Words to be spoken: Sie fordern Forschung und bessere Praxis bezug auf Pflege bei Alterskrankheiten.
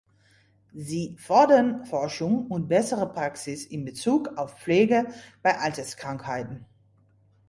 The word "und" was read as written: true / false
true